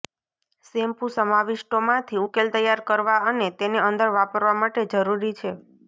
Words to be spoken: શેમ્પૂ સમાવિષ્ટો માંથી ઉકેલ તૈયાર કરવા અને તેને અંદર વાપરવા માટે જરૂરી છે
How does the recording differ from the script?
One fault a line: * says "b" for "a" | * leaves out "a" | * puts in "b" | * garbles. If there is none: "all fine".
all fine